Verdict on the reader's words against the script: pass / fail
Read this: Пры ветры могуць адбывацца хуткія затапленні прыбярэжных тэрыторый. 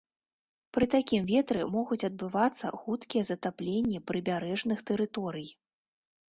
fail